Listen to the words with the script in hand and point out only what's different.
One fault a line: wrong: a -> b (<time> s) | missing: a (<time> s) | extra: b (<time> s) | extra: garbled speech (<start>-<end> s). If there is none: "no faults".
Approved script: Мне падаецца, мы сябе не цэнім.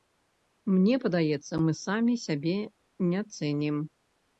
extra: самі (1.9 s)